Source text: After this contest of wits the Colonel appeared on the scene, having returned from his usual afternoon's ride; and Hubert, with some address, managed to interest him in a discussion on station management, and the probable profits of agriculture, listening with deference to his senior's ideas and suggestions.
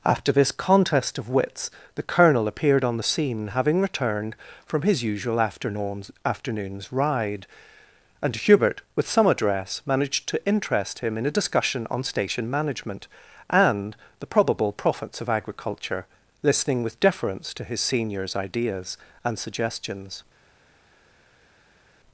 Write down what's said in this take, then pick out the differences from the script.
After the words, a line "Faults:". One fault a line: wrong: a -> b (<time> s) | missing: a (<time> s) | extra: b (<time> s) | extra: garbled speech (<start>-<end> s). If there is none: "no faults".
After this contest of wits the Colonel appeared on the scene, having returned from his usual afternoon's afternoon's ride; and Hubert, with some address, managed to interest him in a discussion on station management, and the probable profits of agriculture, listening with deference to his senior's ideas and suggestions.
Faults:
extra: afternoon's (6.2 s)